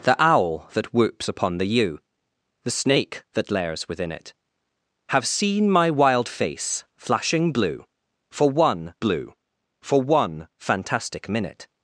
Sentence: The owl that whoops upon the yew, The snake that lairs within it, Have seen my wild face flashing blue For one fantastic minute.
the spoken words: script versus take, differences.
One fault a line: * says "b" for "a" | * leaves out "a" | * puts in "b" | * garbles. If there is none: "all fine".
* puts in "blue For one"